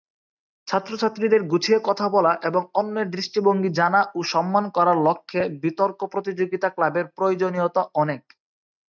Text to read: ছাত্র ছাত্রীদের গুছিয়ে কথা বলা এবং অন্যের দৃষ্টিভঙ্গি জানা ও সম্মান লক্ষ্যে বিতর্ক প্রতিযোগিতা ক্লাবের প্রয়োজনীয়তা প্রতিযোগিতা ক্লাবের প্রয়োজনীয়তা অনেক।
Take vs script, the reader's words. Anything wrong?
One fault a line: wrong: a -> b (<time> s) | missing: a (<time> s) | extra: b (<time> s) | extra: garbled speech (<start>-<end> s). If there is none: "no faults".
extra: করার (4.8 s)
missing: প্রতিযোগিতা ক্লাবের প্রয়োজনীয়তা (7.8 s)